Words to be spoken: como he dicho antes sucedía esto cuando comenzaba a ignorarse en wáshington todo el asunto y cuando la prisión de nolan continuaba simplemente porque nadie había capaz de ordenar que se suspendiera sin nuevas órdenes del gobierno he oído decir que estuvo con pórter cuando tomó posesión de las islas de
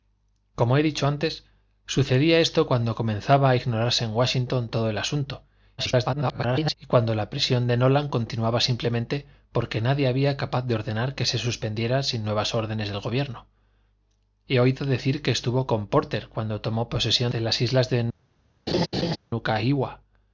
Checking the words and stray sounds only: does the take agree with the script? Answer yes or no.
no